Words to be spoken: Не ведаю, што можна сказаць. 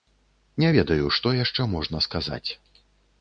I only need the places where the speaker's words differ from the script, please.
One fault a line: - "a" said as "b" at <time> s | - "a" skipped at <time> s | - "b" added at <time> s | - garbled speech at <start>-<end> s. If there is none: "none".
- "яшчэ" added at 1.4 s